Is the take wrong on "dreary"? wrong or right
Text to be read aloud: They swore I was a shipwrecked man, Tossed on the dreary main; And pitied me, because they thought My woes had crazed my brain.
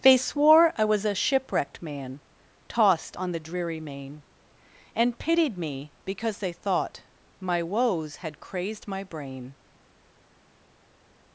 right